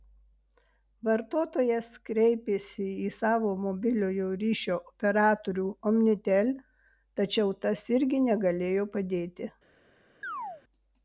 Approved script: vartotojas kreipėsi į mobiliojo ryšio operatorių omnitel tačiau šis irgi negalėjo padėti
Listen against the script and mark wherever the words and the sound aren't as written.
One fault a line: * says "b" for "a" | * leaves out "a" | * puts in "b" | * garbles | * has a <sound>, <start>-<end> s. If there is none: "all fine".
* puts in "savo"
* says "tas" for "šis"
* has a chirp, 10.2-10.6 s